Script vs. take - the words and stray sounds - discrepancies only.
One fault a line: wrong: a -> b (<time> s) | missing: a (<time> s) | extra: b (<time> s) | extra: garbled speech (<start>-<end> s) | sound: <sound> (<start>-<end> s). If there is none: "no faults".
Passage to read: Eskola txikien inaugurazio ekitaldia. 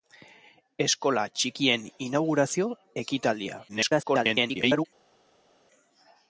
extra: garbled speech (3.7-4.9 s)